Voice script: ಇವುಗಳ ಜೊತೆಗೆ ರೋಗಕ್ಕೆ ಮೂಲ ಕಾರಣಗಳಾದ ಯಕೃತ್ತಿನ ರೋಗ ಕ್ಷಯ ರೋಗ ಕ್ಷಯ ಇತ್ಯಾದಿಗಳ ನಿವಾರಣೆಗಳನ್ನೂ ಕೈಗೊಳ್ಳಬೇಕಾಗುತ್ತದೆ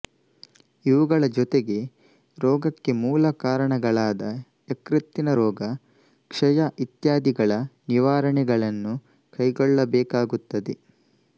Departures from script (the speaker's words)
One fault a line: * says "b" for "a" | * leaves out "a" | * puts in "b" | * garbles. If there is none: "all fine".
* leaves out "ರೋಗ ಕ್ಷಯ"